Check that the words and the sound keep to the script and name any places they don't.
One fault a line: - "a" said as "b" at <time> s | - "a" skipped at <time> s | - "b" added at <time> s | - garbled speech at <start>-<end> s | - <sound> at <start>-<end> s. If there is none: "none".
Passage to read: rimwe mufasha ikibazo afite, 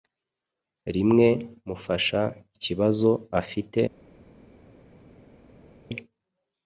none